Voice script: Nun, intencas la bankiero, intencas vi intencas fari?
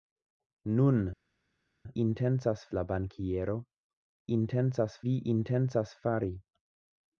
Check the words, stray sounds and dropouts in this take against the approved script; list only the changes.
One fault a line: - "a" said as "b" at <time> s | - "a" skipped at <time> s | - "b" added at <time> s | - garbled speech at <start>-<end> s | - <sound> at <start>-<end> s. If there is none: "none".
none